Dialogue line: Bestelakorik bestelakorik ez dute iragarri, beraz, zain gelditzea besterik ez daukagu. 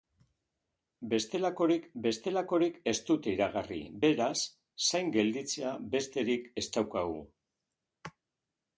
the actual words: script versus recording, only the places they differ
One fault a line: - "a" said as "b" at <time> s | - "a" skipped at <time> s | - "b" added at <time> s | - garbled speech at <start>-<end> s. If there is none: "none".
none